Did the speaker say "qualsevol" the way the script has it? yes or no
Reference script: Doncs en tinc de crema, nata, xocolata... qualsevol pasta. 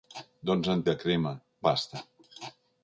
no